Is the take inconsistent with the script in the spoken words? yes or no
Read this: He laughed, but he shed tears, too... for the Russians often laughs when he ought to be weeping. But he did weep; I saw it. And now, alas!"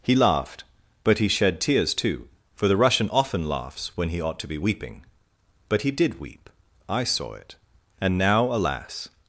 yes